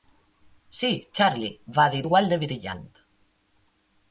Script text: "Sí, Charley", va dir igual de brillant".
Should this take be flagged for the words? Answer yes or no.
no